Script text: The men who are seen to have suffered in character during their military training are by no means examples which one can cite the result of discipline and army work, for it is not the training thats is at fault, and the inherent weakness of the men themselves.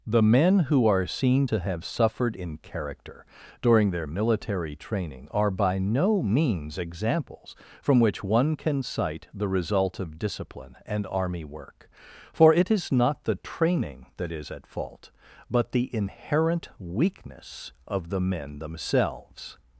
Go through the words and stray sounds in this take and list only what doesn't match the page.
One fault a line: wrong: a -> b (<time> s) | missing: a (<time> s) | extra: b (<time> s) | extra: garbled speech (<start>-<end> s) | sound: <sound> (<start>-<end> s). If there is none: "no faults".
extra: from (7.8 s)
wrong: thats -> that (14.2 s)
wrong: and -> but (15.5 s)